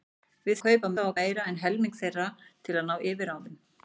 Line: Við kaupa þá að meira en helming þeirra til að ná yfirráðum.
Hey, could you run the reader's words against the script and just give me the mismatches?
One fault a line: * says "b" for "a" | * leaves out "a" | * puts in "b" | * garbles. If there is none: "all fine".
all fine